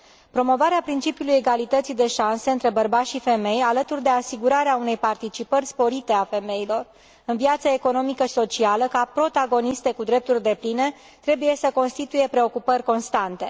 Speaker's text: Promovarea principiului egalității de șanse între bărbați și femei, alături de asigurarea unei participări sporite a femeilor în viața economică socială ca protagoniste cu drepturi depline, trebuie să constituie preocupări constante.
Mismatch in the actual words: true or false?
false